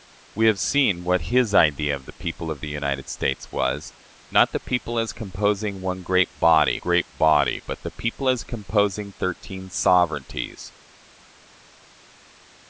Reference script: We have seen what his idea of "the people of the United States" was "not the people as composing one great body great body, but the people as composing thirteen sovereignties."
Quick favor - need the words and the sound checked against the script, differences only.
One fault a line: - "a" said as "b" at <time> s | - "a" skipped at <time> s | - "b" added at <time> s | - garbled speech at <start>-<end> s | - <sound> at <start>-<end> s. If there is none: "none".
none